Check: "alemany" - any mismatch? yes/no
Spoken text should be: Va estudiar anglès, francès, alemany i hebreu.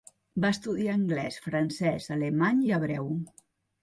no